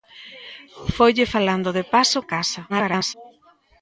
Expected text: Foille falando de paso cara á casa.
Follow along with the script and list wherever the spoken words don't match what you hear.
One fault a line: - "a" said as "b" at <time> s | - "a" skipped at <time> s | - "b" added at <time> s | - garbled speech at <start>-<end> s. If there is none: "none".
- "cara" skipped at 2.2 s
- garbled speech at 2.7-3.1 s